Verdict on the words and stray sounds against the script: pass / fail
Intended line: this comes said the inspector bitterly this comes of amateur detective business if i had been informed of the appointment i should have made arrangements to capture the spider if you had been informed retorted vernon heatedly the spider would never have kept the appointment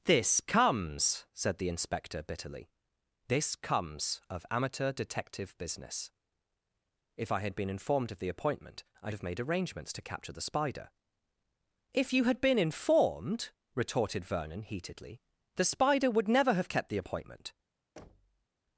fail